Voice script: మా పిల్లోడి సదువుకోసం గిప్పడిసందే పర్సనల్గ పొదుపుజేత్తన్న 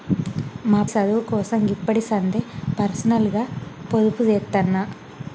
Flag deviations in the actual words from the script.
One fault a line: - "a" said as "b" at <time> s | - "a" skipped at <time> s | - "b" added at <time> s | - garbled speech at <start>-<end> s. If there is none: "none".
- "పిల్లోడి" skipped at 0.8 s